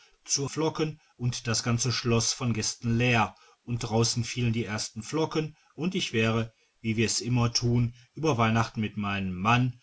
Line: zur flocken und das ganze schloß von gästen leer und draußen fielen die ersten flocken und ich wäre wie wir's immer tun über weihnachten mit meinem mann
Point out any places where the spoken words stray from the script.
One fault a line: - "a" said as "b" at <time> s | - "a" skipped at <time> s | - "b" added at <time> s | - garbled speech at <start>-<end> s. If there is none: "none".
none